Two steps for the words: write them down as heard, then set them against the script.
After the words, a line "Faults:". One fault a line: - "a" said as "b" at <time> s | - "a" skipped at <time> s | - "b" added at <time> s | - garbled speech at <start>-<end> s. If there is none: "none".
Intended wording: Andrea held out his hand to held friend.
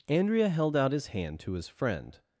Andrea held out his hand to his friend.
Faults:
- "held" said as "his" at 1.5 s